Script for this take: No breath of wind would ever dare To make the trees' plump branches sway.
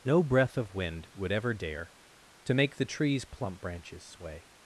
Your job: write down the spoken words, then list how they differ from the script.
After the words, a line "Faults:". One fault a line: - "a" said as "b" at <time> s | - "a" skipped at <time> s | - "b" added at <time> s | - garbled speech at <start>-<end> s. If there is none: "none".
No breath of wind would ever dare To make the trees' plump branches sway.
Faults:
none